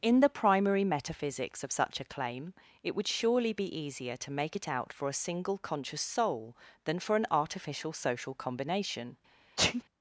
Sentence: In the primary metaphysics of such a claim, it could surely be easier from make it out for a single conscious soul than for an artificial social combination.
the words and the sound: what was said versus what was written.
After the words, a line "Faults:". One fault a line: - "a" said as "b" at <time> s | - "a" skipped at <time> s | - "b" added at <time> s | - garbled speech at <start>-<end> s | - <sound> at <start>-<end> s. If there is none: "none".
In the primary metaphysics of such a claim, it would surely be easier to make it out for a single conscious soul than for an artificial social combination.
Faults:
- "could" said as "would" at 2.9 s
- "from" said as "to" at 4.2 s
- sneeze at 9.6-9.8 s